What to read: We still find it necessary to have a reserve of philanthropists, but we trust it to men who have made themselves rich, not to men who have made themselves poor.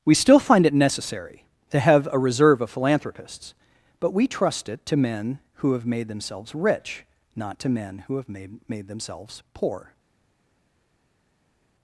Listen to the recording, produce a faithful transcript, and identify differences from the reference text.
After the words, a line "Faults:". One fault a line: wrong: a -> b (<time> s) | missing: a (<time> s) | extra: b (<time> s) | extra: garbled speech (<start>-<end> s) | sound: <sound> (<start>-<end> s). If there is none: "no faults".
We still find it necessary to have a reserve of philanthropists, but we trust it to men who have made themselves rich, not to men who have made made themselves poor.
Faults:
extra: made (8.7 s)